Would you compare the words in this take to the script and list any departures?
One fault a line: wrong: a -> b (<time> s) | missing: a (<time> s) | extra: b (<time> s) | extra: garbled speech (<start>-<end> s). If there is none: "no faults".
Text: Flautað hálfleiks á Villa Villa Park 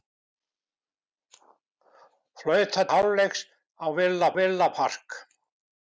no faults